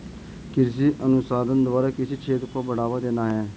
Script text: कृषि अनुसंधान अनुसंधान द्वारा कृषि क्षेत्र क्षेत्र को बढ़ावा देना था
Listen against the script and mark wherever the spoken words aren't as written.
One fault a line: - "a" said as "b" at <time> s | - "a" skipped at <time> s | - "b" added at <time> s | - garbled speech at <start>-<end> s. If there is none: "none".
- "अनुसंधान" skipped at 1.6 s
- "क्षेत्र" skipped at 2.5 s
- "था" said as "है" at 3.3 s